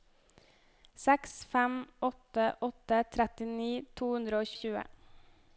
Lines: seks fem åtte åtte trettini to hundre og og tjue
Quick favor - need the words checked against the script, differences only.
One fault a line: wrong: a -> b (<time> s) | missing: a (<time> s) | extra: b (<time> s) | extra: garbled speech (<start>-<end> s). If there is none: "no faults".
no faults